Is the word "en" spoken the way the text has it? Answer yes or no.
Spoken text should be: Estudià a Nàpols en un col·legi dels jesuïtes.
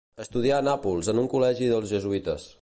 yes